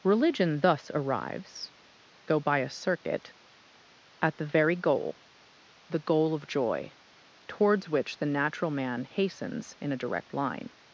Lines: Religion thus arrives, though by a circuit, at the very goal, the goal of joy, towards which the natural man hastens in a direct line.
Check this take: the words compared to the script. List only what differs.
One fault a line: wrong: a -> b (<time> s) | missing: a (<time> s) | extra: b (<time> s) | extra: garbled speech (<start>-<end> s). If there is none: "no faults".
no faults